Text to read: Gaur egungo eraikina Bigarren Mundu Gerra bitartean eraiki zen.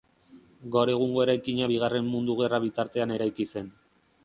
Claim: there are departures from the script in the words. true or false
false